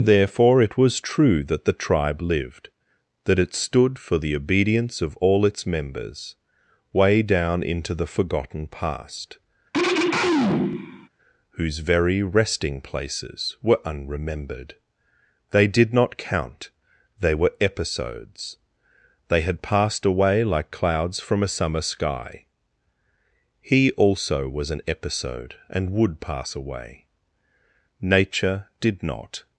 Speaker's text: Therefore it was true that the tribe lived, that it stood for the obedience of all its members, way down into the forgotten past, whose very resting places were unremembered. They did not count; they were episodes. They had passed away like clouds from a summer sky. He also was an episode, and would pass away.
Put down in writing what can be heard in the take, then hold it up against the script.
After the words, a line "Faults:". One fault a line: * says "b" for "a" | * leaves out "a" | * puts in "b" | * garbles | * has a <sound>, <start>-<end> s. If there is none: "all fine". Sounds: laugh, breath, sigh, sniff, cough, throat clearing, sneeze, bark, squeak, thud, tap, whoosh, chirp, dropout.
Therefore it was true that the tribe lived, that it stood for the obedience of all its members, way down into the forgotten past, whose very resting places were unremembered. They did not count; they were episodes. They had passed away like clouds from a summer sky. He also was an episode, and would pass away. Nature did not
Faults:
* has a throat clearing, 9.7-11.1 s
* puts in "Nature did not"